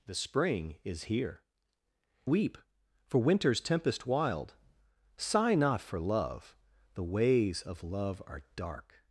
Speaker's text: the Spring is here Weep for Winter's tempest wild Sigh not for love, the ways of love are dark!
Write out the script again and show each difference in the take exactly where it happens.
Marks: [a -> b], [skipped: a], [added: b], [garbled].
the Spring is here Weep for Winter's tempest wild Sigh not for love, the ways of love are dark!